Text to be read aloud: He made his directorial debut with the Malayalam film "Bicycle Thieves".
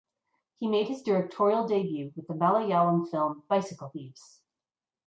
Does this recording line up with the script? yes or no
yes